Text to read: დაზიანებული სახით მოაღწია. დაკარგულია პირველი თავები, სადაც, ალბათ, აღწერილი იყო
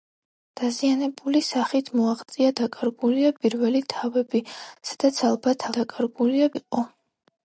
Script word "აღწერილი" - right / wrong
wrong